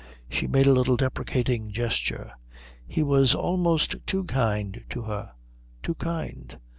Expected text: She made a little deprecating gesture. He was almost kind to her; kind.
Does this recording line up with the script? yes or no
no